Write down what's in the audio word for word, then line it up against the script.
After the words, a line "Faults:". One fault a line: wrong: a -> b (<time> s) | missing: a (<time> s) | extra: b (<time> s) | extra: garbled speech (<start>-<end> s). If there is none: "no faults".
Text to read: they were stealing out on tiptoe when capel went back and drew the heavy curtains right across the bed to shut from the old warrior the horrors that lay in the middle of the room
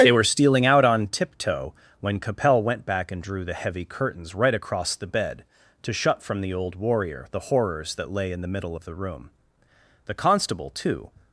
they were stealing out on tiptoe when capel went back and drew the heavy curtains right across the bed to shut from the old warrior the horrors that lay in the middle of the room the constable too
Faults:
extra: the constable too (10.0 s)